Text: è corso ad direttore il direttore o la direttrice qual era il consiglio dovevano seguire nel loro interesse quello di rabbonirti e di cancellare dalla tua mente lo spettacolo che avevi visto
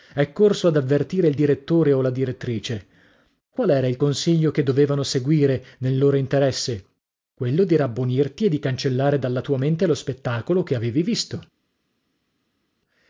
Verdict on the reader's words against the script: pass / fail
fail